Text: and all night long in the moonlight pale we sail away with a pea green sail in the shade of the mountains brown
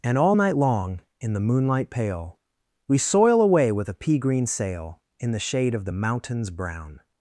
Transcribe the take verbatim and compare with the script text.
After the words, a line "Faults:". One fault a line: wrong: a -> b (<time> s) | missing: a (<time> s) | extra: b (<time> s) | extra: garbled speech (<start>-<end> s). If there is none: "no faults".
and all night long in the moonlight pale we soil away with a pea green sail in the shade of the mountains brown
Faults:
wrong: sail -> soil (3.0 s)